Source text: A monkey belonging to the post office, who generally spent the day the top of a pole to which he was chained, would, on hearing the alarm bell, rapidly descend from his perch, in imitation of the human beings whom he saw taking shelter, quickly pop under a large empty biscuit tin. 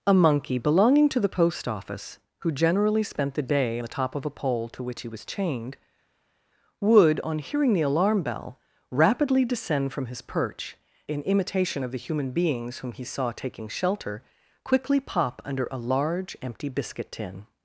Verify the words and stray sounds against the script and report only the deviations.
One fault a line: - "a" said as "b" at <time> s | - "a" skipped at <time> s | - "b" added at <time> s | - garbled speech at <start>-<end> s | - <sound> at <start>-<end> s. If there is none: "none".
none